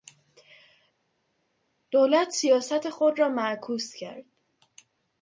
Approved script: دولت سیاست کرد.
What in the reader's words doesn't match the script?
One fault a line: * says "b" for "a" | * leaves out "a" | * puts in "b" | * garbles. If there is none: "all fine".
* puts in "خود را معکوس"